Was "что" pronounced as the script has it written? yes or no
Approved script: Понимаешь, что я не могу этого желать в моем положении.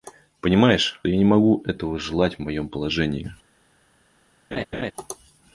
no